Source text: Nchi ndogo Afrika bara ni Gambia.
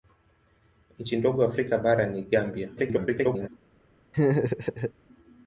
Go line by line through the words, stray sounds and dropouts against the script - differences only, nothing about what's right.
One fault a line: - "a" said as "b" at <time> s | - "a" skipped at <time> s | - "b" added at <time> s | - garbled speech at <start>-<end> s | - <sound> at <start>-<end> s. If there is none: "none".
- garbled speech at 2.8-3.5 s
- laugh at 4.1-4.9 s